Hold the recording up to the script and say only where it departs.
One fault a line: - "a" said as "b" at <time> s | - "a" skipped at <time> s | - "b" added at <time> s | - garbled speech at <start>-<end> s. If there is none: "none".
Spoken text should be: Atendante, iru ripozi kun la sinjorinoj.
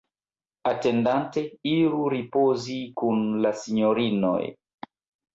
none